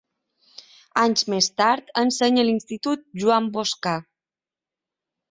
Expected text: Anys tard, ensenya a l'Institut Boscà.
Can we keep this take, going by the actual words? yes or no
no